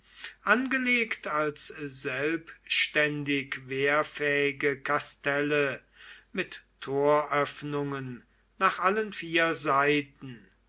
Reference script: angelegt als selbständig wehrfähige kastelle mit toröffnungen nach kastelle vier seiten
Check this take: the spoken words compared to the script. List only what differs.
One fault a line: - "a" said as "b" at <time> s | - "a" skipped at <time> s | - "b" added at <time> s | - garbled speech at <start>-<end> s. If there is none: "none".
- "kastelle" said as "allen" at 8.8 s